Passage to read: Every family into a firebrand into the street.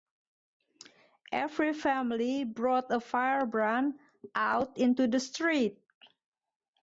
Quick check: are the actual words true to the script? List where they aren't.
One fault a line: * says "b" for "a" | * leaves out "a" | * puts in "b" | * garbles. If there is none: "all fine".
* says "brought" for "into"
* puts in "out"